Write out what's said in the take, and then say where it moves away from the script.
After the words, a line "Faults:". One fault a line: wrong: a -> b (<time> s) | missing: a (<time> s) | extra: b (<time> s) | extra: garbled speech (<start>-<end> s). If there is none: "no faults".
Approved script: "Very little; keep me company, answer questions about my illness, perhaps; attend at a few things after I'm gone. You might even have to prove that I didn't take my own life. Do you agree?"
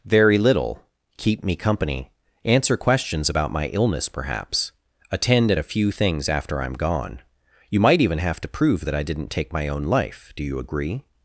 "Very little; keep me company, answer questions about my illness, perhaps; attend at a few things after I'm gone. You might even have to prove that I didn't take my own life. Do you agree?"
Faults:
no faults